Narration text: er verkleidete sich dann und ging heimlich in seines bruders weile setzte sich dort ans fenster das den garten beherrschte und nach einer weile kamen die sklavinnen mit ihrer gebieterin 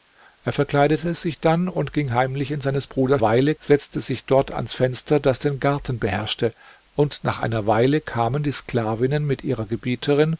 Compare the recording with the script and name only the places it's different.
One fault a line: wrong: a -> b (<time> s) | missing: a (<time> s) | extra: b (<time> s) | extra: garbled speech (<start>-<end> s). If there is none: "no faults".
no faults